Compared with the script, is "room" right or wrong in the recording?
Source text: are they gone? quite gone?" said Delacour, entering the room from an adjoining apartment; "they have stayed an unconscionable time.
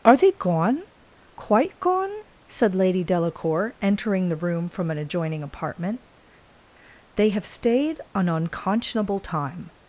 right